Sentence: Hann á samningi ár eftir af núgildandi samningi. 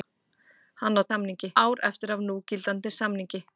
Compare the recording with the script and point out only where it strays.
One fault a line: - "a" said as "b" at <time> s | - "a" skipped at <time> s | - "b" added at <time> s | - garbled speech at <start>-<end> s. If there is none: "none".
none